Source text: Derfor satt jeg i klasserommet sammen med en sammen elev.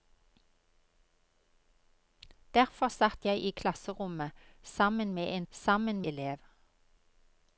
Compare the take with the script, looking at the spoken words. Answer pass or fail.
pass